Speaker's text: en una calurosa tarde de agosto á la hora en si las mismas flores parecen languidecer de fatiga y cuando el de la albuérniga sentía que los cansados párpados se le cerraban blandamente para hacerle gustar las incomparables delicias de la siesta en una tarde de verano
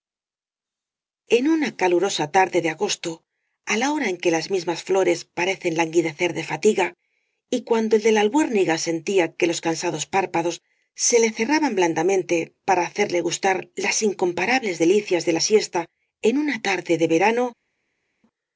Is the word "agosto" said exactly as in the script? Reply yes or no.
yes